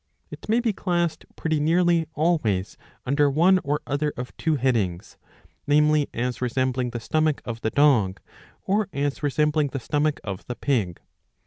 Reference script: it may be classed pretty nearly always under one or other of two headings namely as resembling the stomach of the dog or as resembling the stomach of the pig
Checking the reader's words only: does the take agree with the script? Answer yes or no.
yes